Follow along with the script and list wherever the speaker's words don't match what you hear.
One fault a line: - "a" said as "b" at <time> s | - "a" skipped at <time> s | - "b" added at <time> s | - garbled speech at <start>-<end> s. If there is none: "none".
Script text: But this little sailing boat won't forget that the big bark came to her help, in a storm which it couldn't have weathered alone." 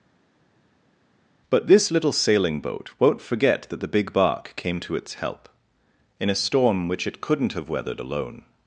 - "her" said as "its" at 4.9 s